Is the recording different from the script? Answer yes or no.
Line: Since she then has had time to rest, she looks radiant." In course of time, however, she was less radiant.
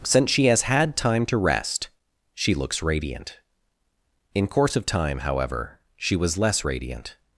yes